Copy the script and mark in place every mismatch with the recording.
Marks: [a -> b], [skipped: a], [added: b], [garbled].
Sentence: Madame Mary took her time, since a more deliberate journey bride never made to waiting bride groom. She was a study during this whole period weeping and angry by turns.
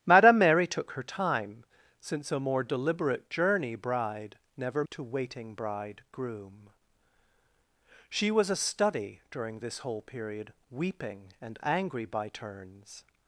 Madame Mary took her time, since a more deliberate journey bride never [skipped: made] to waiting bride groom. She was a study during this whole period weeping and angry by turns.